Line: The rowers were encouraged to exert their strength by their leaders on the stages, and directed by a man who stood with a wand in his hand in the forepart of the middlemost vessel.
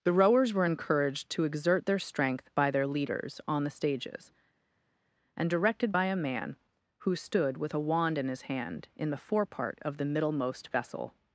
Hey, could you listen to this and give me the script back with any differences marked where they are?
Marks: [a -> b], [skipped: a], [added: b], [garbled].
The rowers were encouraged to exert their strength by their leaders on the stages, and directed by a man who stood with a wand in his hand in the forepart of the middlemost vessel.